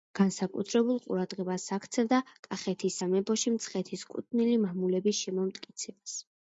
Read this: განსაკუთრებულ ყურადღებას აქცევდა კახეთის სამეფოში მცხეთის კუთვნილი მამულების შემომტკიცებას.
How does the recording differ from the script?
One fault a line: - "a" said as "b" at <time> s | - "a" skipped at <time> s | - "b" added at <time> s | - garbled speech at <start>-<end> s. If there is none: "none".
none